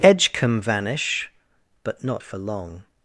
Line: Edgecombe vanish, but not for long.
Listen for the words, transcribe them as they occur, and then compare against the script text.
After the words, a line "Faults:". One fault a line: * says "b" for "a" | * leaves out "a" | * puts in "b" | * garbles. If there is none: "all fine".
Edgecombe vanish, but not for long.
Faults:
all fine